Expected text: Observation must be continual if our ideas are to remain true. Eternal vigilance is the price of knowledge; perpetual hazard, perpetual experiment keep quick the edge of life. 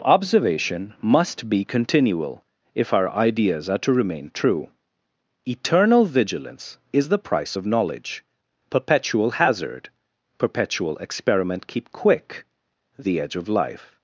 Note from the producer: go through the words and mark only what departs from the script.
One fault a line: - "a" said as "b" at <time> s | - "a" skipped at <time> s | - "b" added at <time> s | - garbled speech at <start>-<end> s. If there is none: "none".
none